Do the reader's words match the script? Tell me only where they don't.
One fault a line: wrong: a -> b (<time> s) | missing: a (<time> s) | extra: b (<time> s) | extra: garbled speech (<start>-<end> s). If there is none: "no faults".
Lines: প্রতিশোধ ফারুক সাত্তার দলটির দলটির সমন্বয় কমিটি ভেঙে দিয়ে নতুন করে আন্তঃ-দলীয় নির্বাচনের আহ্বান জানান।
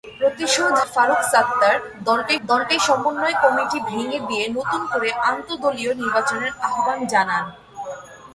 no faults